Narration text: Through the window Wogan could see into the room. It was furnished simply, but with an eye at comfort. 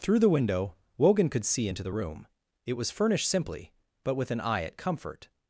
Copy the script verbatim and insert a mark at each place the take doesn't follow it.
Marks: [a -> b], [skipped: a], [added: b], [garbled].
Through the window Wogan could see into the room. It was furnished simply, but with an eye at comfort.